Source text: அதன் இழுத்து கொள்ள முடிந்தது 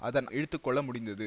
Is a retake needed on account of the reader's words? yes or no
no